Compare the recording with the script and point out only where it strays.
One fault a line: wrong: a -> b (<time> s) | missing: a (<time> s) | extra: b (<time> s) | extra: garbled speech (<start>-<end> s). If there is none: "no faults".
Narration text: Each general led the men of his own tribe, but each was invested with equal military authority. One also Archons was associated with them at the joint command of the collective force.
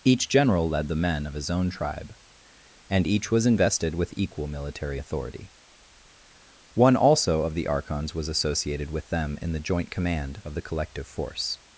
wrong: but -> and (2.9 s)
extra: of the (7.4 s)
wrong: at -> in (9.4 s)